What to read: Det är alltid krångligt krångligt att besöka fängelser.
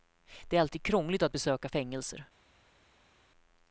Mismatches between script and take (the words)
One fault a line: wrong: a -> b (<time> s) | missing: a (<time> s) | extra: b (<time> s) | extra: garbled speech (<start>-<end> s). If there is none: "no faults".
missing: krångligt (1.2 s)